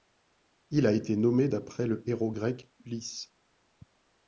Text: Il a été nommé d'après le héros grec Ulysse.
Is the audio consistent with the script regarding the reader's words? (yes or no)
yes